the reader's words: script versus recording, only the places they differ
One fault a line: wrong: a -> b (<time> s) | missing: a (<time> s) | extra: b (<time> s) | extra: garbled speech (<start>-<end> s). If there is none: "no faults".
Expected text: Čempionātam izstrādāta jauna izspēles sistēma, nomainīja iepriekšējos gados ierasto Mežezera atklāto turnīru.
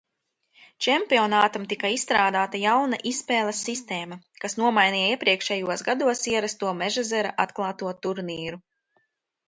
extra: tika (1.7 s)
extra: kas (4.5 s)